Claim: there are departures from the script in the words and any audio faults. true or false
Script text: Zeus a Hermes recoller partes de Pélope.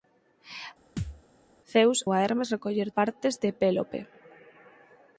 true